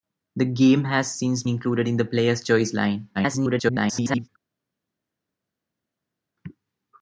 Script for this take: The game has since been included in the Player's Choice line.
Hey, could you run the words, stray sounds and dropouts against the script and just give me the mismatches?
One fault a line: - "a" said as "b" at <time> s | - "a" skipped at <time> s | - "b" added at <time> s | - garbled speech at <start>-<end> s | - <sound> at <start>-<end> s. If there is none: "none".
- "been" skipped at 1.4 s
- garbled speech at 3.1-4.3 s